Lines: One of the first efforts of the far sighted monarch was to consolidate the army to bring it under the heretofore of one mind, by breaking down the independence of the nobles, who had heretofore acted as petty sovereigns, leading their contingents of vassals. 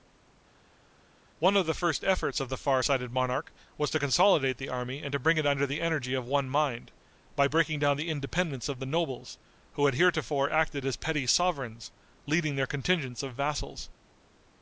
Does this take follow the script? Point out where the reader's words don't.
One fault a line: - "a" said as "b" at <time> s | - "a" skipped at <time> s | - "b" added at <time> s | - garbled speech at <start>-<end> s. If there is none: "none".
- "and" added at 5.0 s
- "heretofore" said as "energy" at 5.8 s